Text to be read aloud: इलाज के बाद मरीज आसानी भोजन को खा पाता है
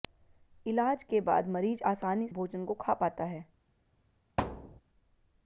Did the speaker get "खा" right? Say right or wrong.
right